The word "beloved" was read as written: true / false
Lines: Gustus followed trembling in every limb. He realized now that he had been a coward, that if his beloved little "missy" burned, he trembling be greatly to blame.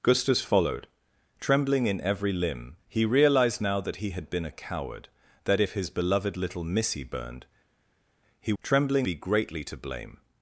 true